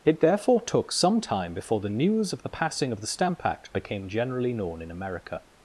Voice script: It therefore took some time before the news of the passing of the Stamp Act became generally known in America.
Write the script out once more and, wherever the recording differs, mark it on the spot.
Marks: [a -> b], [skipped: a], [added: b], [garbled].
It therefore took some time before the news of the passing of the Stamp Act became generally known in America.